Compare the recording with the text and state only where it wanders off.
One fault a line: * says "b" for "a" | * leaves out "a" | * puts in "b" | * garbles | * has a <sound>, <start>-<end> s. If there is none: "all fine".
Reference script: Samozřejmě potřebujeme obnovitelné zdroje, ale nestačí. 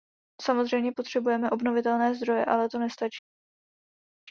* puts in "to"